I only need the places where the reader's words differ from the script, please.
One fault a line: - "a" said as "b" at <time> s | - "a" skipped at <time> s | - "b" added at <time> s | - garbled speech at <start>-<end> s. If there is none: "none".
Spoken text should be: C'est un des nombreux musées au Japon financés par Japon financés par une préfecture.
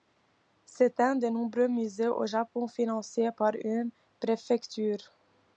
- "Japon financés par" skipped at 3.5 s